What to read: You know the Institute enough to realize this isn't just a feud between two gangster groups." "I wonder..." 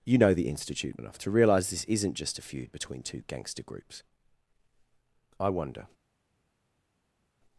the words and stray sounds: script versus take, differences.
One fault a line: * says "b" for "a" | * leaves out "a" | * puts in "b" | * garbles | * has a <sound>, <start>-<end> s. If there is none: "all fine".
all fine